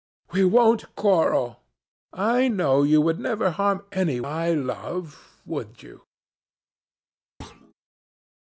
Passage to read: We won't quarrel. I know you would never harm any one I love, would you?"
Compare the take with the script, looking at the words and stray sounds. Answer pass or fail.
fail